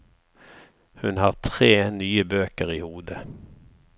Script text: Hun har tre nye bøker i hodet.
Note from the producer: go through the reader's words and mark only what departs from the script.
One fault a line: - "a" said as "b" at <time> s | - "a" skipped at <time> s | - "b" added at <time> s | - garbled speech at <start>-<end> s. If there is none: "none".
none